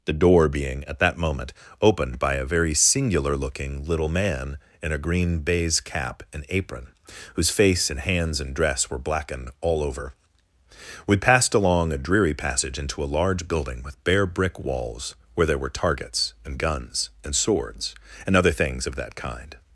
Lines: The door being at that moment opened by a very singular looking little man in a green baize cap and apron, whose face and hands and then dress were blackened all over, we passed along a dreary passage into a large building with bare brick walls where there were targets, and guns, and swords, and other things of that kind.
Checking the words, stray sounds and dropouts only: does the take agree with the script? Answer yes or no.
no